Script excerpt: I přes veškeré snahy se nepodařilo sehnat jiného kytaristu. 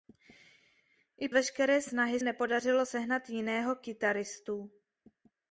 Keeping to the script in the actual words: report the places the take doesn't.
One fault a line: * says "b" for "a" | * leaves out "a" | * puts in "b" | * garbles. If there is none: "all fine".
* leaves out "přes"
* leaves out "se"